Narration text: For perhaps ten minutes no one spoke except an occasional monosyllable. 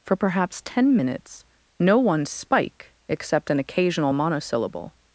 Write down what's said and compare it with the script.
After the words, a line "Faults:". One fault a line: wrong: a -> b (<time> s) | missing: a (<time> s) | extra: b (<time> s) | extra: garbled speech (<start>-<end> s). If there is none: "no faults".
For perhaps ten minutes no one spike except an occasional monosyllable.
Faults:
wrong: spoke -> spike (2.2 s)